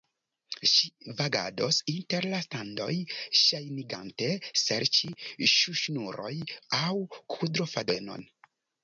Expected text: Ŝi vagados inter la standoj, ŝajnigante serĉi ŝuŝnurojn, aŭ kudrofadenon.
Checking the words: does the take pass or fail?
pass